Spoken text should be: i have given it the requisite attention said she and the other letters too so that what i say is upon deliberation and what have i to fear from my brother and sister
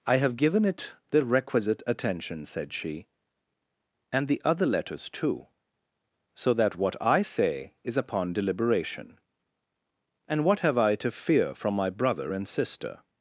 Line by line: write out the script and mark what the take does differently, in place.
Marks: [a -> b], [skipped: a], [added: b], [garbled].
i have given it the requisite attention said she and the other letters too so that what i say is upon deliberation and what have i to fear from my brother and sister